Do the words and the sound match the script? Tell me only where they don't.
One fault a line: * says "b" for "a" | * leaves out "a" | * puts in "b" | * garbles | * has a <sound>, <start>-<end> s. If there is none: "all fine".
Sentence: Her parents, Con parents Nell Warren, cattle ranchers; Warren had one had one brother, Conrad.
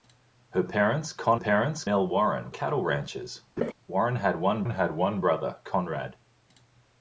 * has a laugh, 3.6-3.7 s